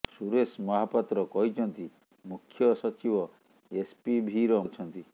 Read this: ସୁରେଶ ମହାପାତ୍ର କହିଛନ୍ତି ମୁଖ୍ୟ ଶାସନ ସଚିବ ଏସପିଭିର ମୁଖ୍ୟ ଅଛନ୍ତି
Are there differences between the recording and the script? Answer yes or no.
yes